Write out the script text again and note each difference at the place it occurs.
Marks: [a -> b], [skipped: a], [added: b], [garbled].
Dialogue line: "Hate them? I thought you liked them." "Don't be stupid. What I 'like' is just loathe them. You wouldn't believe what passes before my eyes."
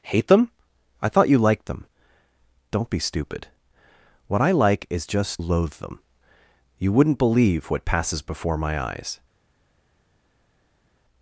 "Hate them? I thought you liked them." "Don't be stupid. What I 'like' is just loathe them. You wouldn't believe what passes before my eyes."